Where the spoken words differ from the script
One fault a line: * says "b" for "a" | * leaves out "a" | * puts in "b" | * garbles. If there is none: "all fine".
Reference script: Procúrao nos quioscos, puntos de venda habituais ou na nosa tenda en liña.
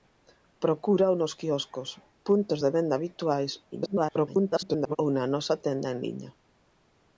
* garbles